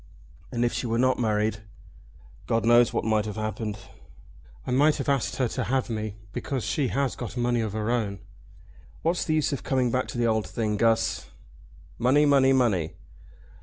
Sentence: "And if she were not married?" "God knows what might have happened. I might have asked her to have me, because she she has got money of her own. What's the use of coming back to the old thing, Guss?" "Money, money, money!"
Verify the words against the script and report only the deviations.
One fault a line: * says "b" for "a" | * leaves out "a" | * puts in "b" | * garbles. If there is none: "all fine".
* leaves out "she"